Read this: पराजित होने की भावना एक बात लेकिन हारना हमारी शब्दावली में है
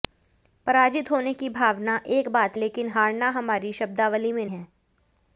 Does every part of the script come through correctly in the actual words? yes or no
yes